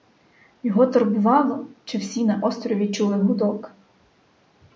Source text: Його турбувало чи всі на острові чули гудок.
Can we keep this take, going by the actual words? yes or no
yes